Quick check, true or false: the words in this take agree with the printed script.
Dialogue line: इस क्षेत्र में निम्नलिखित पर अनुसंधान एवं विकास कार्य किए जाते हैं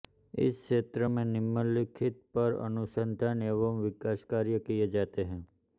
true